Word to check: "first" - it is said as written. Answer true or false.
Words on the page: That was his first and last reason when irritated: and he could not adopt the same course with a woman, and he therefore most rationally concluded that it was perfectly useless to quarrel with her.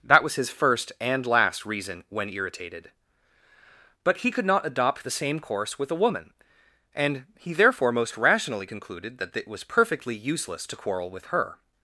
true